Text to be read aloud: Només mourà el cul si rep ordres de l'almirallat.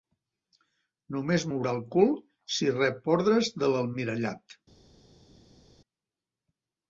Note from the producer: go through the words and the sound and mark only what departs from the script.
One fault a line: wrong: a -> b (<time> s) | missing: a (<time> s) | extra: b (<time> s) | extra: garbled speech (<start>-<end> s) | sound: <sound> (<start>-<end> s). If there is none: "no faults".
no faults